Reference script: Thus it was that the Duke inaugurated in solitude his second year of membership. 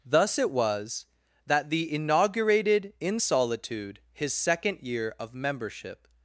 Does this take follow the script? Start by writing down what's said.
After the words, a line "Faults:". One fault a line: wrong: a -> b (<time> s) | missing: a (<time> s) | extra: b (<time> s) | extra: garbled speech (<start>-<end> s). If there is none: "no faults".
Thus it was that the inaugurated in solitude his second year of membership.
Faults:
missing: Duke (1.9 s)